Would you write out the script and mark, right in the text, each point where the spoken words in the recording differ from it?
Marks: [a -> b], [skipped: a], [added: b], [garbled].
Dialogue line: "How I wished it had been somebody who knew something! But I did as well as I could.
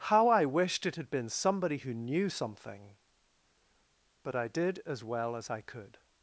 "How I wished it had been somebody who knew something! But I did as well as I could.